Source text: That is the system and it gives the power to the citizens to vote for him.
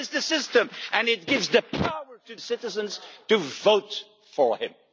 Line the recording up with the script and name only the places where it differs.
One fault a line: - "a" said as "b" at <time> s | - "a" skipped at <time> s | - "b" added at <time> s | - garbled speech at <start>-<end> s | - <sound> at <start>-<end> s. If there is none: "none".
- "the" skipped at 2.4 s